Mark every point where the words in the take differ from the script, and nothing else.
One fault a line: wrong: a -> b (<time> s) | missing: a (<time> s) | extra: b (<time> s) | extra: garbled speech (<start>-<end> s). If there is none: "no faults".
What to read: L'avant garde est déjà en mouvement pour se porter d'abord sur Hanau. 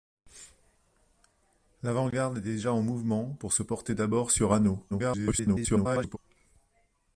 extra: garbled speech (4.9-6.2 s)